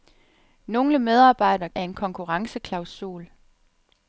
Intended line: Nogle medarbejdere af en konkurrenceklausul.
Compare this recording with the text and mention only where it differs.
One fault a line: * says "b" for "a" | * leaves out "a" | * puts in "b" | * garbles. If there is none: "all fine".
all fine